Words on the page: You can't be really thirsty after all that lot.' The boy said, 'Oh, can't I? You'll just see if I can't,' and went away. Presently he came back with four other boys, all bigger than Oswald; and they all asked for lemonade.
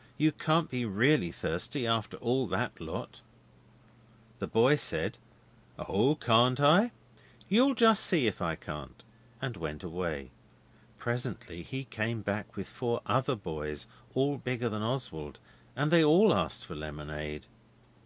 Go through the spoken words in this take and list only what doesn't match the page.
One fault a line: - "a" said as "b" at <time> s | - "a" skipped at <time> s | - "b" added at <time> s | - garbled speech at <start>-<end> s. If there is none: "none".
none